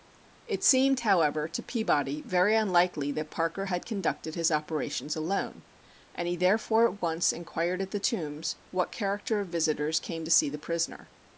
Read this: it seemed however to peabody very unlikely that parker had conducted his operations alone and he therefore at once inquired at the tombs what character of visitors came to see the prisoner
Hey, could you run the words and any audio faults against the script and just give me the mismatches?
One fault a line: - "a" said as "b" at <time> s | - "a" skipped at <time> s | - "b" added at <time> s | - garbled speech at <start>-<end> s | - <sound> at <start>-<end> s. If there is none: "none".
none